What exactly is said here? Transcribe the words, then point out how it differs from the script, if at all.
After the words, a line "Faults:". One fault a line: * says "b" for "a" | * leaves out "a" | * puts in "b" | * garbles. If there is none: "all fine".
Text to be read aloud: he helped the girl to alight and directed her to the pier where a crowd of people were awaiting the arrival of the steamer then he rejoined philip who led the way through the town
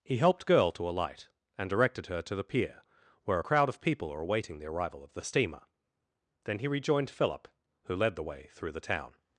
he helped girl to alight and directed her to the pier where a crowd of people were awaiting the arrival of the steamer then he rejoined philip who led the way through the town
Faults:
* leaves out "the"